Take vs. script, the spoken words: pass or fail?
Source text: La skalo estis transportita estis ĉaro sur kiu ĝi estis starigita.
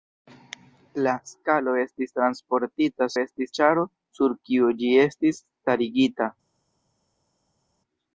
pass